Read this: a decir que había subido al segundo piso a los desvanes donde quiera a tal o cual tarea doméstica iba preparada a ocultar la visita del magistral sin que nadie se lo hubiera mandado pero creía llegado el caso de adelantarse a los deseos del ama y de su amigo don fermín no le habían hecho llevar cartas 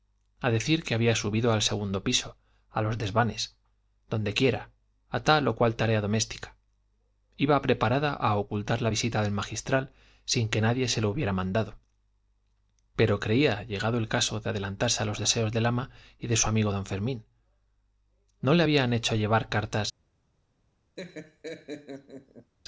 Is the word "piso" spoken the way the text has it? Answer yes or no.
yes